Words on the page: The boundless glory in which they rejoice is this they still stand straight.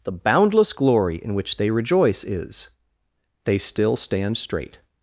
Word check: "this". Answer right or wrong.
wrong